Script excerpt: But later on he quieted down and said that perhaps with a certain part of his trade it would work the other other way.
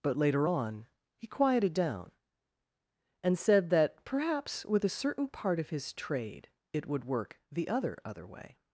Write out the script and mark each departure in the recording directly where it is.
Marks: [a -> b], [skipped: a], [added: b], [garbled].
But later on he quieted down and said that perhaps with a certain part of his trade it would work the other other way.